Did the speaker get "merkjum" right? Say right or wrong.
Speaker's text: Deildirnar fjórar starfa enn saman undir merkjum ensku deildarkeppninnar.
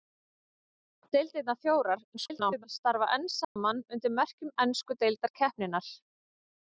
right